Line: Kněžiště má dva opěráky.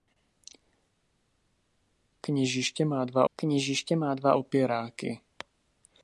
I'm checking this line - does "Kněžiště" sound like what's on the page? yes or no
yes